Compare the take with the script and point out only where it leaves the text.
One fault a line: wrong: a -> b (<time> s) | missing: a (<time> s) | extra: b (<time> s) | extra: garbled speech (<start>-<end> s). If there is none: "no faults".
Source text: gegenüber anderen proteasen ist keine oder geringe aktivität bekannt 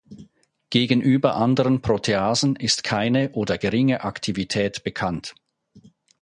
no faults